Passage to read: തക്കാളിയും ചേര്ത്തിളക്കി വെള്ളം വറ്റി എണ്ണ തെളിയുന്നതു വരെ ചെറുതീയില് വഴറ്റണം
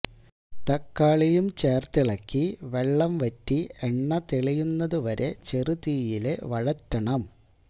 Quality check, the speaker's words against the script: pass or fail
pass